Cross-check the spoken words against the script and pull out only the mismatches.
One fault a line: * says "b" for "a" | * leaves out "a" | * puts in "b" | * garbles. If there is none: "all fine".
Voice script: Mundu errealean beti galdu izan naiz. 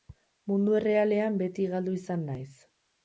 all fine